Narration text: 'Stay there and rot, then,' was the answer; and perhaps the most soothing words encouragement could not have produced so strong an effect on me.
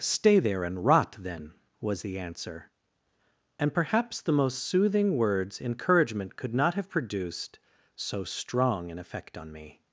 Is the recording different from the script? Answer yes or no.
no